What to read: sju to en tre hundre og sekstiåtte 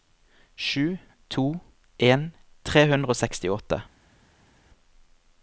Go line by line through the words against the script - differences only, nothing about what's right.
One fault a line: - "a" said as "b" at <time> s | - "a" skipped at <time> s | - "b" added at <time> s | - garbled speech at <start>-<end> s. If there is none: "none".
none